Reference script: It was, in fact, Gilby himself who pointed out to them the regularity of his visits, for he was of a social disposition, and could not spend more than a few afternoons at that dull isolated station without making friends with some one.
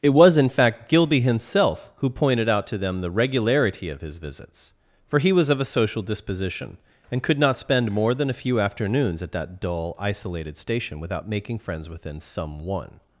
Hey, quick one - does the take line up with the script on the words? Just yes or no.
no